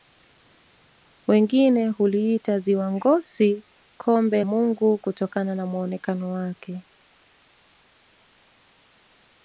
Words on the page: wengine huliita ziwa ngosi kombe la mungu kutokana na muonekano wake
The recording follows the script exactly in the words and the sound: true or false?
false